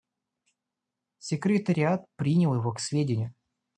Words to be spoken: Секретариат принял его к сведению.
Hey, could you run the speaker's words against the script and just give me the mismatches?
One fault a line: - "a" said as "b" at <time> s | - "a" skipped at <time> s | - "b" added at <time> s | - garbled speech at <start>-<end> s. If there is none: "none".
none